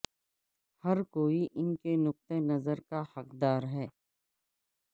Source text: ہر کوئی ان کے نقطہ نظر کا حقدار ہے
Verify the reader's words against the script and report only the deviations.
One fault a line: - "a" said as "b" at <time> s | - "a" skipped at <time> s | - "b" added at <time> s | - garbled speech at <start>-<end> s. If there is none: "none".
none